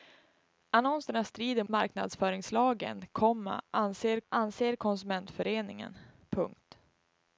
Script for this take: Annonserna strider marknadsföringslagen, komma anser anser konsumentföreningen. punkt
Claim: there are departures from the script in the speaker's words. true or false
false